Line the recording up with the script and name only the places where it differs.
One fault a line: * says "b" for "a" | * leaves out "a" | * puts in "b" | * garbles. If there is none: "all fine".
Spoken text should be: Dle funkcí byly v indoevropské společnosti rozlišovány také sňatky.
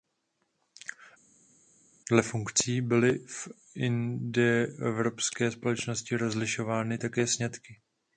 all fine